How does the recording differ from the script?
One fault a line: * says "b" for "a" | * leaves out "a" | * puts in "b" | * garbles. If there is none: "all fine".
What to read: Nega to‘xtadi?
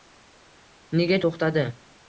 all fine